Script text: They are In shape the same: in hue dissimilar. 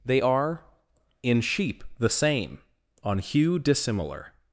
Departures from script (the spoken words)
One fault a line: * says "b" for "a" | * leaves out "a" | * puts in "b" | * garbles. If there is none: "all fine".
* says "sheep" for "shape"
* says "on" for "in"